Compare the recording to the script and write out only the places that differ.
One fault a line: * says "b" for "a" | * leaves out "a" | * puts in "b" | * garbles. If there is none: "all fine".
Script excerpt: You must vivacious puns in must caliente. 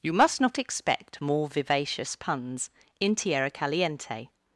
* puts in "not expect more"
* says "tierra" for "must"